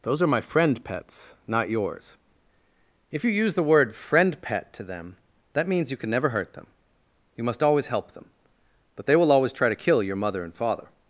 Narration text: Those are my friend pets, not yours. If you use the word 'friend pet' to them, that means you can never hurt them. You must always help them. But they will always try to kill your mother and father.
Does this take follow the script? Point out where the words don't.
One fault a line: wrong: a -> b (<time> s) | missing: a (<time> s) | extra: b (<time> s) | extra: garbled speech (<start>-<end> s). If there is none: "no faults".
no faults